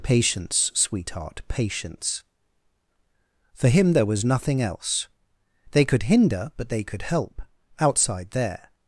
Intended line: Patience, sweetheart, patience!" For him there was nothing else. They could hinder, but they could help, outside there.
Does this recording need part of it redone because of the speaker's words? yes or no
no